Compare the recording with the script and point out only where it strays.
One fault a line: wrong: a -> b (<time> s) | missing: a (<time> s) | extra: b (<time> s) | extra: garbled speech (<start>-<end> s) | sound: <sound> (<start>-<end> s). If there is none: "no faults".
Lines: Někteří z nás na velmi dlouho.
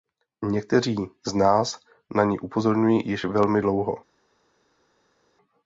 extra: ni upozorňují již (2.2 s)